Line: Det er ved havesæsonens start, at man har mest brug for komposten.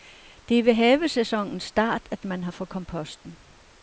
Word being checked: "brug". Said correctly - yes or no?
no